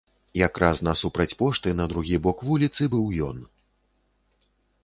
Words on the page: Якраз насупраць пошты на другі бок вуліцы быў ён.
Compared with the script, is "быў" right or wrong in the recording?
right